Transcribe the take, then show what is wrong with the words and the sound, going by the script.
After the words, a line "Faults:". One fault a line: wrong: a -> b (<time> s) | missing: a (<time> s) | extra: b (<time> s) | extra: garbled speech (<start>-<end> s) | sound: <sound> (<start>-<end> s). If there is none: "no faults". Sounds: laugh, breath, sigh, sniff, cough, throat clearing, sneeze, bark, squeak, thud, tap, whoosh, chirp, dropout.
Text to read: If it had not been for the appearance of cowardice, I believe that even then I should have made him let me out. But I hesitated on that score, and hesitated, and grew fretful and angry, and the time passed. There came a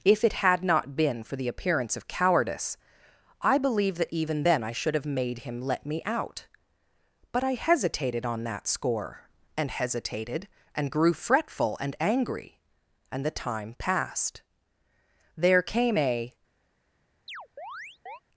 If it had not been for the appearance of cowardice, I believe that even then I should have made him let me out. But I hesitated on that score, and hesitated, and grew fretful and angry, and the time passed. There came a
Faults:
sound: chirp (17.3-18.2 s)